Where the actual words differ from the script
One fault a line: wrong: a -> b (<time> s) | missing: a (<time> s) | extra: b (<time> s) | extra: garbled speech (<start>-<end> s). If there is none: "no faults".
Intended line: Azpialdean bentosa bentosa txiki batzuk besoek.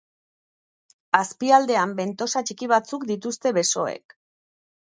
missing: bentosa (2.4 s)
extra: dituzte (3.1 s)